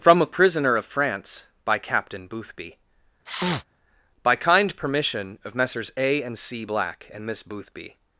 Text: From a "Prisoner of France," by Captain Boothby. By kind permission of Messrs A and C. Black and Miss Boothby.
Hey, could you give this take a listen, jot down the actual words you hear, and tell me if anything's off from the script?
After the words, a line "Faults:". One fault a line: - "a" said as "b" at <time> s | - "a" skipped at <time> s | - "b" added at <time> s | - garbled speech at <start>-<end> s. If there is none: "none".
From a "Prisoner of France," by Captain Boothby. By kind permission of Messrs A and C. Black and Miss Boothby.
Faults:
none